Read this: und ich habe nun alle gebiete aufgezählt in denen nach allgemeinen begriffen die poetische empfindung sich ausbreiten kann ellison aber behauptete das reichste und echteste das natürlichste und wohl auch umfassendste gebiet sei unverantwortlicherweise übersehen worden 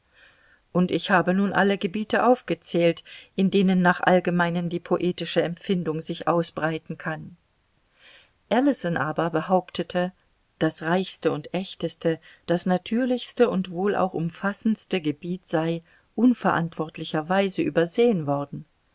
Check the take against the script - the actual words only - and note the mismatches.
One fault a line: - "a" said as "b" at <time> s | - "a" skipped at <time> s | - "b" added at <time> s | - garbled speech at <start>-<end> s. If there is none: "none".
- "begriffen" skipped at 4.7 s